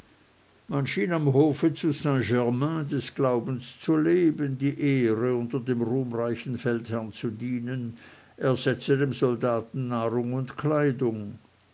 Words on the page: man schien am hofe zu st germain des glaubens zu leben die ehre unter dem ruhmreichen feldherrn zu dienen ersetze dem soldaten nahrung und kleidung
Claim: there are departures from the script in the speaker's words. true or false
false